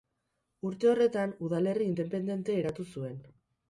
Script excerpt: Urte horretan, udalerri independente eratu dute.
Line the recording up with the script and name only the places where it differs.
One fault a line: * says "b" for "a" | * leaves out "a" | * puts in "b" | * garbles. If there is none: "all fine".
* says "zuen" for "dute"